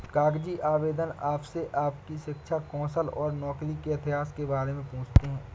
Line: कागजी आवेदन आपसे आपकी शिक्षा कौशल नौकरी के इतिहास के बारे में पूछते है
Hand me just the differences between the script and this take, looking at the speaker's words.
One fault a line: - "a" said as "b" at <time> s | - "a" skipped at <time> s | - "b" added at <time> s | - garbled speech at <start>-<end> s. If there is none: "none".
- "और" added at 3.2 s